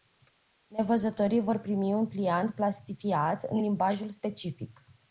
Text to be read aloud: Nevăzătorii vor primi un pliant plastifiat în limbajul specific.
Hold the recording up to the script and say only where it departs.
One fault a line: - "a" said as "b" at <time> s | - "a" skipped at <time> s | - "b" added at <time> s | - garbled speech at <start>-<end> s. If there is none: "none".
none